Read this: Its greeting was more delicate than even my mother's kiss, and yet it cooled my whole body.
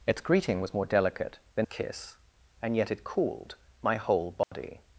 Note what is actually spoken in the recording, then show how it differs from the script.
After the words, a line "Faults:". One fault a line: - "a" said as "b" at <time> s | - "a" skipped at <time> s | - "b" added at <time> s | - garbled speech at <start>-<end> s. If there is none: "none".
Its greeting was more delicate than kiss, and yet it cooled my whole body.
Faults:
- "even my mother's" skipped at 1.7 s